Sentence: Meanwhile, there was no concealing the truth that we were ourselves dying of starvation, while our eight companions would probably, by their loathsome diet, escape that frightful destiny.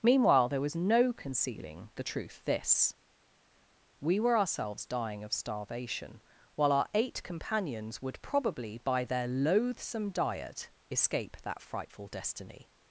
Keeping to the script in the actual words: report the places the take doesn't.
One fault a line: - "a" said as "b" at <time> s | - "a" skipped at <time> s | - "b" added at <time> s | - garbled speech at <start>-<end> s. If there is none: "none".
- "that" said as "this" at 2.5 s